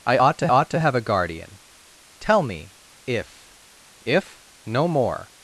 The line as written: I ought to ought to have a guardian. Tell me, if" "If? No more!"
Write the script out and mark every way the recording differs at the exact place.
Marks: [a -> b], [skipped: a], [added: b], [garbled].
I ought to ought to have a guardian. Tell me, if" "If? No more!"